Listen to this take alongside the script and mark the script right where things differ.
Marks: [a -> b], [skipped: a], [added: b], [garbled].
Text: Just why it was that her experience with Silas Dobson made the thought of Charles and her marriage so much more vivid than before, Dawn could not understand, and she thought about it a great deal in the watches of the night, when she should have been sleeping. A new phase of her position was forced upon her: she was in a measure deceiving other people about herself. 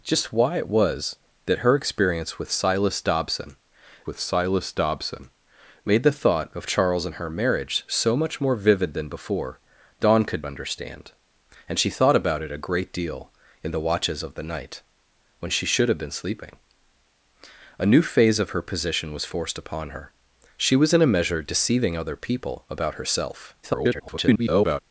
Just why it was that her experience with Silas Dobson [added: with Silas Dobson] made the thought of Charles and her marriage so much more vivid than before, Dawn could [skipped: not] understand, and she thought about it a great deal in the watches of the night, when she should have been sleeping. A new phase of her position was forced upon her: she was in a measure deceiving other people about herself. [garbled]